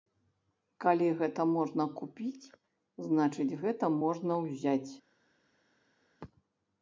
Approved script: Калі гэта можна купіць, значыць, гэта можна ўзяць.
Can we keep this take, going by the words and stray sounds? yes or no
yes